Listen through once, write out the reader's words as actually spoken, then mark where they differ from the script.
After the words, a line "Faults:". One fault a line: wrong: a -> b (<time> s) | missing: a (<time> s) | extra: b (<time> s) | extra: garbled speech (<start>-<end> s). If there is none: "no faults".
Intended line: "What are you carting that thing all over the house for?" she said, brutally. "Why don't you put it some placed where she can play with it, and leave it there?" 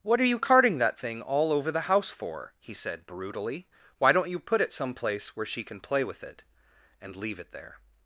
"What are you carting that thing all over the house for?" he said, brutally. "Why don't you put it some place where she can play with it, and leave it there?"
Faults:
wrong: she -> he (2.6 s)
wrong: placed -> place (4.9 s)